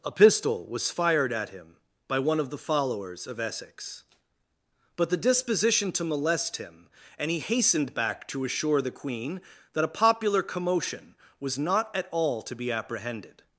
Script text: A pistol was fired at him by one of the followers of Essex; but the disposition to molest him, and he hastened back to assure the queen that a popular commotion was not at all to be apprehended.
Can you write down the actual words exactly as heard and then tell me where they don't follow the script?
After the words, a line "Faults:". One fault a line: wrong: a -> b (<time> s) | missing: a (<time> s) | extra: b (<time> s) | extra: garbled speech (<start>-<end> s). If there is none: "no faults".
A pistol was fired at him by one of the followers of Essex; but the disposition to molest him, and he hastened back to assure the queen that a popular commotion was not at all to be apprehended.
Faults:
no faults